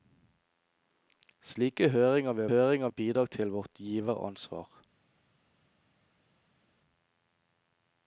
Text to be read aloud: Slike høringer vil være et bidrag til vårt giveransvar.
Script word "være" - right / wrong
wrong